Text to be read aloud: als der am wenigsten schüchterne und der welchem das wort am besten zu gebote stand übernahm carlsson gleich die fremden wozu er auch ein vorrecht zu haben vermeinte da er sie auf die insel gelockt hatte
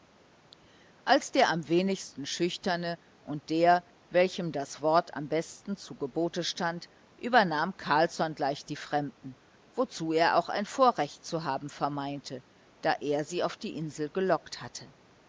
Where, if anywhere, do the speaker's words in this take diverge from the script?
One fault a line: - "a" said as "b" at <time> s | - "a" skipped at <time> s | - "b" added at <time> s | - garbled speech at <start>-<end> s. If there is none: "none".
none